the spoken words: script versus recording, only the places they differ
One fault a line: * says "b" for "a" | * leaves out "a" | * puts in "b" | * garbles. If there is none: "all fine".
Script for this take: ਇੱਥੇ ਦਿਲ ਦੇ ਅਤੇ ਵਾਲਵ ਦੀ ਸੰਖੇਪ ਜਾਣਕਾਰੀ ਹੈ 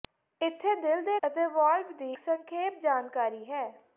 all fine